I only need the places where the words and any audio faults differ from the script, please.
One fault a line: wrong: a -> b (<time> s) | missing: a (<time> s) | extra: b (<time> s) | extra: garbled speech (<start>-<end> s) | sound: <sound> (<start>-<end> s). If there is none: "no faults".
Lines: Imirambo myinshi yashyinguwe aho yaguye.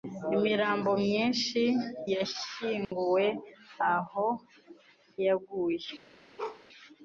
sound: dropout (2.8-2.9 s)
sound: bark (6.4-6.6 s)